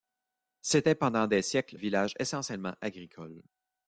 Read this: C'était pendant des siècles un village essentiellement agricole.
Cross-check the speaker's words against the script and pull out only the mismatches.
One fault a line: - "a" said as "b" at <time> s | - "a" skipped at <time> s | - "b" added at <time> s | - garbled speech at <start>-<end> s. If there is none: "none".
- "un" skipped at 1.8 s